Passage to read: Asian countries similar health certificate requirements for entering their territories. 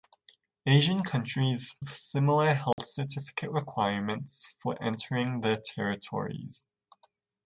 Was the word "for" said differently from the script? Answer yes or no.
no